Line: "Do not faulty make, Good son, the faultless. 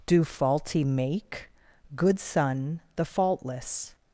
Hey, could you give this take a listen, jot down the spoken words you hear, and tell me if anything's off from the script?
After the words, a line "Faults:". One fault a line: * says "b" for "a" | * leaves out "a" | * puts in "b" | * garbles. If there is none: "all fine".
"Do faulty make, Good son, the faultless.
Faults:
* leaves out "not"